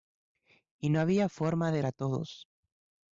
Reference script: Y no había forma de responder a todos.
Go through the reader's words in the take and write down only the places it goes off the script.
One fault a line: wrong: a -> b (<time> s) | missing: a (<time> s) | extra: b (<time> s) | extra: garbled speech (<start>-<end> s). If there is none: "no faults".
missing: responder (1.8 s)